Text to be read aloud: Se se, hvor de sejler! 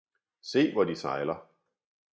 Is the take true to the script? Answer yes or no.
no